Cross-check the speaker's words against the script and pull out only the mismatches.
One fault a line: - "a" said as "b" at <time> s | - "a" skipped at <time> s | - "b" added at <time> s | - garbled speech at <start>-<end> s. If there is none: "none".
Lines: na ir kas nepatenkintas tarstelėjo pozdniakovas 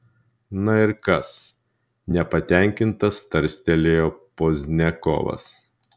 none